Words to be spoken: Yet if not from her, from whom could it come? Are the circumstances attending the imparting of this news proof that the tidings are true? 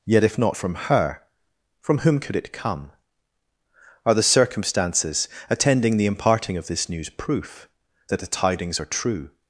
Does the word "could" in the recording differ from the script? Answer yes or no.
no